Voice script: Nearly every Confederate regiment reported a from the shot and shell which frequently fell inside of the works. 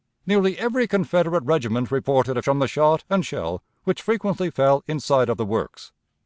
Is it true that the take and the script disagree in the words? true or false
false